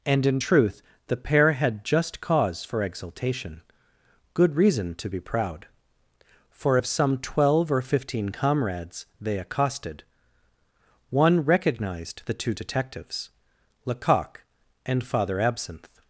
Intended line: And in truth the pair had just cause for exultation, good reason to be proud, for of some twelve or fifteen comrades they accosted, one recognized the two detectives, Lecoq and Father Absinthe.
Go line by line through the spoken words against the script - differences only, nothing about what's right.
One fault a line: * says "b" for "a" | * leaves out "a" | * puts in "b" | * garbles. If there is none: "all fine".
all fine